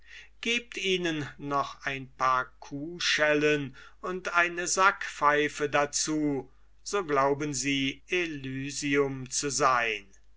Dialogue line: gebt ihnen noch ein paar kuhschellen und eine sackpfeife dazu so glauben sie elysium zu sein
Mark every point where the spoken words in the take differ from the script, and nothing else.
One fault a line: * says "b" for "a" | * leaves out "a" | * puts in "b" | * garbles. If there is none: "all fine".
all fine